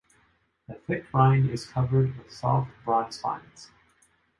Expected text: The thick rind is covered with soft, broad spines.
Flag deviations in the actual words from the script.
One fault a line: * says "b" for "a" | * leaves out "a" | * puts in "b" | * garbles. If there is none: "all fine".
all fine